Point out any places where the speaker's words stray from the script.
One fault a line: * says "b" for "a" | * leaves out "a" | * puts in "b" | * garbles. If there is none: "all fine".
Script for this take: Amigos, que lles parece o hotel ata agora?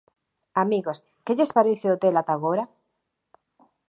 all fine